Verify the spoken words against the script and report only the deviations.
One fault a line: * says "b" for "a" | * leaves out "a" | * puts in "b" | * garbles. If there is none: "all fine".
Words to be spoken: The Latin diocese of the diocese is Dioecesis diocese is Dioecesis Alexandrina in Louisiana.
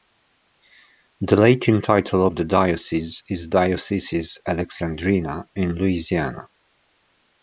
* says "title" for "diocese"
* leaves out "diocese is Dioecesis"